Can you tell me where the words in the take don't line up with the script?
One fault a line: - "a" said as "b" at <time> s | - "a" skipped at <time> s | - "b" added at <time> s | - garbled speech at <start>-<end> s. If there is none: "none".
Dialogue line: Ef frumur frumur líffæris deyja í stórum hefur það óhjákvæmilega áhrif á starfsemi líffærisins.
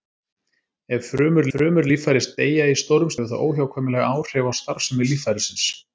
none